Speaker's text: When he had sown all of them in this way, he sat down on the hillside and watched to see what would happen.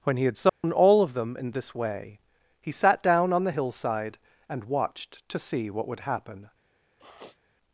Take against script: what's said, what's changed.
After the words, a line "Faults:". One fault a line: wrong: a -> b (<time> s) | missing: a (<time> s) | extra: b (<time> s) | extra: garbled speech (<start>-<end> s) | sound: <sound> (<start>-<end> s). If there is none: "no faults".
When he had sown all of them in this way, he sat down on the hillside and watched to see what would happen.
Faults:
sound: dropout (0.5-0.6 s)
sound: sniff (7.0-7.4 s)